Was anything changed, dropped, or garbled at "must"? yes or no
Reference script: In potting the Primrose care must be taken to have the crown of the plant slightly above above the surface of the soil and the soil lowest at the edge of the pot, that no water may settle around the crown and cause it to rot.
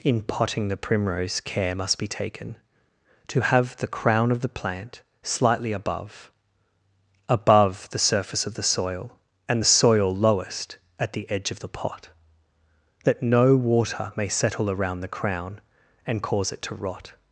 no